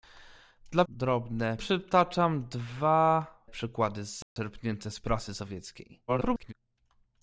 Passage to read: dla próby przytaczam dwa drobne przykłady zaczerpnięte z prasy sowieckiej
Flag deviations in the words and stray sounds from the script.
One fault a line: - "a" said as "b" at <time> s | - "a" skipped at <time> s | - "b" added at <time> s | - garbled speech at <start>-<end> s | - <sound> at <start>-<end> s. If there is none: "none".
- "próby" said as "drobne" at 0.9 s
- "drobne" skipped at 3.3 s
- dropout at 4.2-4.4 s
- garbled speech at 6.1-6.5 s